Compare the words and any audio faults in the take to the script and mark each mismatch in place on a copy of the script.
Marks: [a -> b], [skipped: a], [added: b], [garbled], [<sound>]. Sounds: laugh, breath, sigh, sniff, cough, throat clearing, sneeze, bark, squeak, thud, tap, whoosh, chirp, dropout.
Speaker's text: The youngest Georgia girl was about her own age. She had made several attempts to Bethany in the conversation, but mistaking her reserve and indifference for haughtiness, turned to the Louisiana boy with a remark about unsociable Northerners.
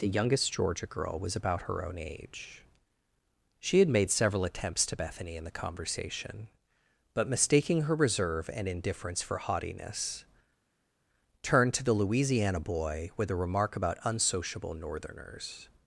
The youngest Georgia girl was about her own age. She had made several attempts to Bethany in the conversation, but mistaking her reserve and indifference for haughtiness, turned to the Louisiana boy with a remark about unsociable Northerners.